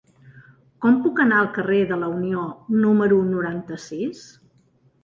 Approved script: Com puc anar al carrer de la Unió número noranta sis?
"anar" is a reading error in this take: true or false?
false